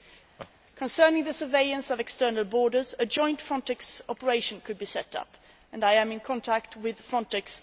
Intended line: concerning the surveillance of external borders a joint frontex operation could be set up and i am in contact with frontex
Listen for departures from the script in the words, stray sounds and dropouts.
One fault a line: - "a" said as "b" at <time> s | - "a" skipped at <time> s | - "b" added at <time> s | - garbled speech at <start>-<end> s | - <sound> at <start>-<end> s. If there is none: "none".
- laugh at 0.4-0.5 s